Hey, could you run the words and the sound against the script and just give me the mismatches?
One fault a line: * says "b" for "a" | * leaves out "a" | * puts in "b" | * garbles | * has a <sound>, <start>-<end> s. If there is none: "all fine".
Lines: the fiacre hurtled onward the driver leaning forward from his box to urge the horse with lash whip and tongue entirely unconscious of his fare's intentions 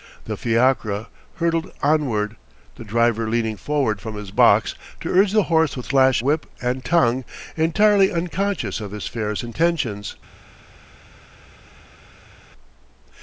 all fine